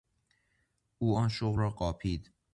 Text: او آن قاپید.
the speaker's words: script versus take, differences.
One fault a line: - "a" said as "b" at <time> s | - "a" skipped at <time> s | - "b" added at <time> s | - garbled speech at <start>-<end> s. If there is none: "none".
- "شغل را" added at 1.3 s